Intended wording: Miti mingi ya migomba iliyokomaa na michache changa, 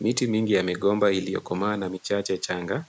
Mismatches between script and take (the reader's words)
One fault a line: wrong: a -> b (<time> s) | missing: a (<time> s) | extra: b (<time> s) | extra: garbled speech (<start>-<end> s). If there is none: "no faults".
no faults